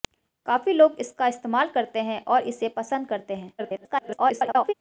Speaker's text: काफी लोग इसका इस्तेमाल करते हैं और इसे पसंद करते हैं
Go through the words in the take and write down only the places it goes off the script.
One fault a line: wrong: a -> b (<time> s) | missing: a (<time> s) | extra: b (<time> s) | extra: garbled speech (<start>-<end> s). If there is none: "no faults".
extra: garbled speech (3.6-4.7 s)